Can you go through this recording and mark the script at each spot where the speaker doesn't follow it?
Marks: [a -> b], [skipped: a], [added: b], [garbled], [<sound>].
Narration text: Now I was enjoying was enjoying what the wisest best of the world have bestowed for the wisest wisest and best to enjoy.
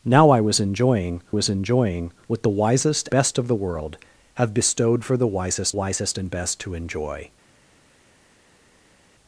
Now I was enjoying was enjoying what the wisest best of the world have bestowed for the wisest wisest and best to enjoy.